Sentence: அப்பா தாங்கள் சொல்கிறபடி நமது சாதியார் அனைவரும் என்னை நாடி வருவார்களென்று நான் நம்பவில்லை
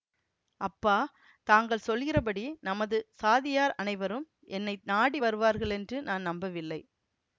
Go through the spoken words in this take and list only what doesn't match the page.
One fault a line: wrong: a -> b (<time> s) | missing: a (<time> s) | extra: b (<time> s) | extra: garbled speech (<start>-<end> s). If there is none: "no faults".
no faults